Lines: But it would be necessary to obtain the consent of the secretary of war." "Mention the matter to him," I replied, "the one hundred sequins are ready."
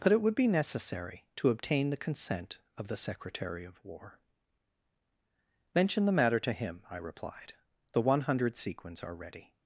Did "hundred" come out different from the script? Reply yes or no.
no